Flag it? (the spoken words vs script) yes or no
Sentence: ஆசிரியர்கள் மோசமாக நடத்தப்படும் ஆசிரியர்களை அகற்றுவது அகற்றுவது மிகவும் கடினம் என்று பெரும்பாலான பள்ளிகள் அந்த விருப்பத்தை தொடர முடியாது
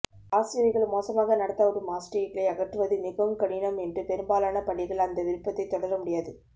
yes